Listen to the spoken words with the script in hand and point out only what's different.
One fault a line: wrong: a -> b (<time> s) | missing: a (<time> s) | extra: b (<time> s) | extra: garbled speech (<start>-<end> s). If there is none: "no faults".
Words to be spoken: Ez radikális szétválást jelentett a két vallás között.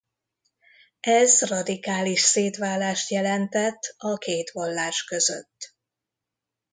no faults